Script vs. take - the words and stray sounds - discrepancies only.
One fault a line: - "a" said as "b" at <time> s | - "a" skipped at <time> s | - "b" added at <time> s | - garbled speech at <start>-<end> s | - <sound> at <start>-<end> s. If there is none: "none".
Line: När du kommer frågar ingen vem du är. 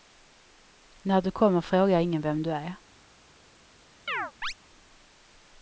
- chirp at 4.1-4.5 s